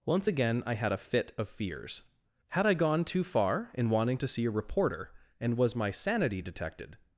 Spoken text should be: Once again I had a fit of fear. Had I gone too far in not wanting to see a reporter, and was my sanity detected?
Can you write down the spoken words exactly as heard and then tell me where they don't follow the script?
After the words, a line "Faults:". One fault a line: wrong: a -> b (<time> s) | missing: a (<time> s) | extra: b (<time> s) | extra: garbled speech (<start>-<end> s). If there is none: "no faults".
Once again I had a fit of fears. Had I gone too far in wanting to see a reporter, and was my sanity detected?
Faults:
wrong: fear -> fears (1.5 s)
missing: not (3.9 s)